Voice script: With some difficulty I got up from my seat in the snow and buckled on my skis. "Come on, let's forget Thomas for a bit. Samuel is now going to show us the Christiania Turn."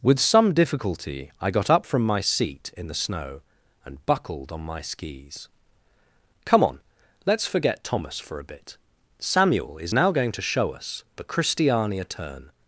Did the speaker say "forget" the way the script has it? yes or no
yes